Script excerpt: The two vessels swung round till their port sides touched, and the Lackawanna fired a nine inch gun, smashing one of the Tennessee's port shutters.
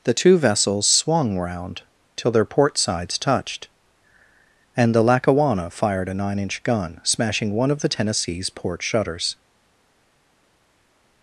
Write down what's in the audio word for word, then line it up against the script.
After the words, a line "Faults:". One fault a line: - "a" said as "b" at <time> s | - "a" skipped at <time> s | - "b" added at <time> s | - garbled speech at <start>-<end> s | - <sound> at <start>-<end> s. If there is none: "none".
The two vessels swung round till their port sides touched, and the Lackawanna fired a nine inch gun, smashing one of the Tennessee's port shutters.
Faults:
none